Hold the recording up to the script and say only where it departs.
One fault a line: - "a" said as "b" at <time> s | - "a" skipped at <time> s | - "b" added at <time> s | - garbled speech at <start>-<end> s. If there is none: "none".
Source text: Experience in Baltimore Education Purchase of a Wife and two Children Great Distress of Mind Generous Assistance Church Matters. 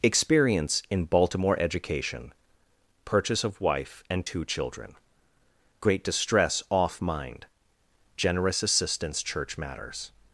- "a" skipped at 3.6 s
- "of" said as "off" at 6.7 s